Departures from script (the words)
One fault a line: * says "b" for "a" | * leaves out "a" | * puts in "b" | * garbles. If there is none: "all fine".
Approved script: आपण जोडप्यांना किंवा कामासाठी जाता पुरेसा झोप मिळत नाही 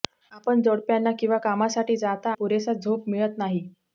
all fine